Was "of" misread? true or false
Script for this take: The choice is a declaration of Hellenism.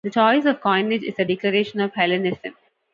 false